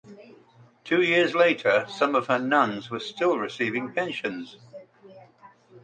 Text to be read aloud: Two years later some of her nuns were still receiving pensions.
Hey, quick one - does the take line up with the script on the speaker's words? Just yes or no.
yes